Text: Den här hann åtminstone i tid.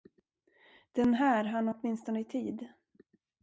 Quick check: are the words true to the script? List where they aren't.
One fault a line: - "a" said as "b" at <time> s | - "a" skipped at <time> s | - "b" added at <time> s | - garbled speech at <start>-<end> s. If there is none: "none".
none